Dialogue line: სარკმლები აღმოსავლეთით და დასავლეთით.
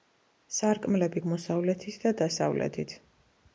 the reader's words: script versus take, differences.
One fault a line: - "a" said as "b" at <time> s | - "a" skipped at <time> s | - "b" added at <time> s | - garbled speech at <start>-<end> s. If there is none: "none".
none